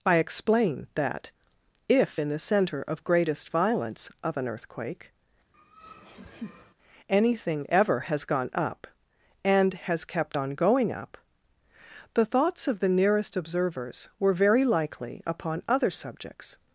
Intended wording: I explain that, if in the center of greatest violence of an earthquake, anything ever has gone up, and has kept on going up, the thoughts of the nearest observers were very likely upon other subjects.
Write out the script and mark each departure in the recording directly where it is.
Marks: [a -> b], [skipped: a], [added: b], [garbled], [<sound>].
I explain that, if in the center of greatest violence of an earthquake, [laugh] anything ever has gone up, and has kept on going up, the thoughts of the nearest observers were very likely upon other subjects.